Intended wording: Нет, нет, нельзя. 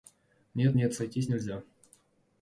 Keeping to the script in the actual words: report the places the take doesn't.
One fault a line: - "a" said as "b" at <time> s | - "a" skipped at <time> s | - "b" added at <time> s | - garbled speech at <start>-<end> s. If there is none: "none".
- "сойтись" added at 0.9 s